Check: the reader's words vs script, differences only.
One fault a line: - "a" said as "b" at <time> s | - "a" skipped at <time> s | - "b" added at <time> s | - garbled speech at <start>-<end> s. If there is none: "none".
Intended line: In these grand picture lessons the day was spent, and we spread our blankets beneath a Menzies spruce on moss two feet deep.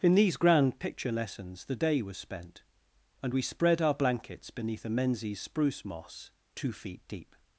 - "on" skipped at 5.8 s